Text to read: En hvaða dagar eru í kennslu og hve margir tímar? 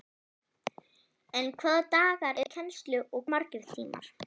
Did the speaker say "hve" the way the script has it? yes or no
no